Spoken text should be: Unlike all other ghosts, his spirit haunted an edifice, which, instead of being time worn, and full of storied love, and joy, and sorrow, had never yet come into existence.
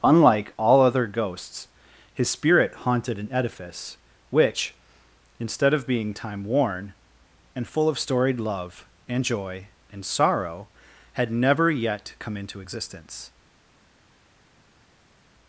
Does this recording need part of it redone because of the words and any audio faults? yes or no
no